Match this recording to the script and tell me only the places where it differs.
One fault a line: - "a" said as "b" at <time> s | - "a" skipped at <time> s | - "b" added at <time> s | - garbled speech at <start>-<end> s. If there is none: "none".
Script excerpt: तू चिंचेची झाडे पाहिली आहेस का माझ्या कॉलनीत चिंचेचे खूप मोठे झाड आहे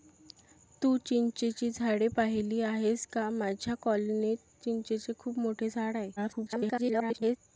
- garbled speech at 6.2-7.4 s